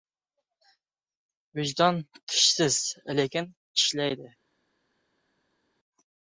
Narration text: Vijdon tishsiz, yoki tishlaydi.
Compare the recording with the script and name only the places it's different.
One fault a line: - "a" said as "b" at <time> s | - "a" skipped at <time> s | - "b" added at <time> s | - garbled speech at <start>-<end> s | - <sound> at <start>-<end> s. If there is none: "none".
- "yoki" said as "lekin" at 3.2 s